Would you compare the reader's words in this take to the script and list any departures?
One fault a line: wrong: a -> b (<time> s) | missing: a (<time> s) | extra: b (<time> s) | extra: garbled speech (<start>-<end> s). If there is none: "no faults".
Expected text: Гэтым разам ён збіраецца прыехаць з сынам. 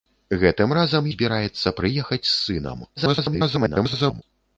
missing: ён (1.1 s)
extra: garbled speech (3.0-4.2 s)